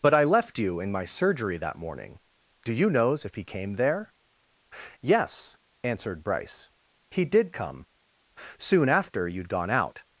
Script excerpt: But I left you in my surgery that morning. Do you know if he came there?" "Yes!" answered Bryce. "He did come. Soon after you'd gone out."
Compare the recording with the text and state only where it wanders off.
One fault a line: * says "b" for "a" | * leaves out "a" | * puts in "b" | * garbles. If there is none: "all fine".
* says "knows" for "know"